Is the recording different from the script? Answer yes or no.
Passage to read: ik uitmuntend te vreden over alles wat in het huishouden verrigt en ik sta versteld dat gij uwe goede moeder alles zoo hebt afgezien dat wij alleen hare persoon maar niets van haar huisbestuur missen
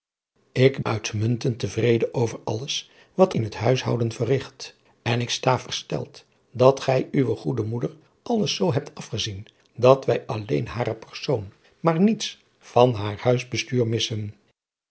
no